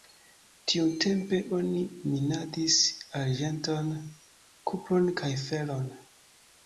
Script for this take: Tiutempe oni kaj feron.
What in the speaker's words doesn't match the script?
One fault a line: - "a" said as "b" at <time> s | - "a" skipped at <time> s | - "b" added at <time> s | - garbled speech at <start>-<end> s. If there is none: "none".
- "minadis arĝenton kupron" added at 2.1 s